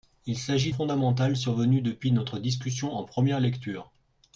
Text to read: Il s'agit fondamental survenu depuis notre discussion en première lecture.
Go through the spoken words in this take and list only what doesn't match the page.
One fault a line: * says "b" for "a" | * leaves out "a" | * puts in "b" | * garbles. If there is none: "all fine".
all fine